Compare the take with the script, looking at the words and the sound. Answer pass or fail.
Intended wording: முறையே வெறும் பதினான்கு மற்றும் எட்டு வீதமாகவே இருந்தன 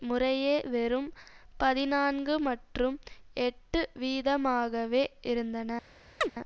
fail